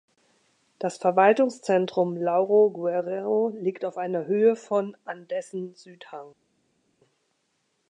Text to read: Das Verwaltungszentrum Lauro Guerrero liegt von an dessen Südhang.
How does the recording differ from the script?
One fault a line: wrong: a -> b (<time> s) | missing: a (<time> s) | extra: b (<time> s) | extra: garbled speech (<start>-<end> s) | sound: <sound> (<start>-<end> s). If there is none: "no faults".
extra: auf einer Höhe (3.9 s)